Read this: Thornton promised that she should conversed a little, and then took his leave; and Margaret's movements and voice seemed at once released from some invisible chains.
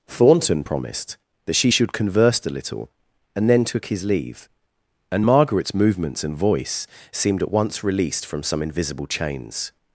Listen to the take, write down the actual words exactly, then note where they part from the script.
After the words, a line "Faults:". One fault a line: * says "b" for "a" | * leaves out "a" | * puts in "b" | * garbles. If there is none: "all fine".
Thornton promised that she should converse a little, and then took his leave; and Margaret's movements and voice seemed at once released from some invisible chains.
Faults:
* says "converse" for "conversed"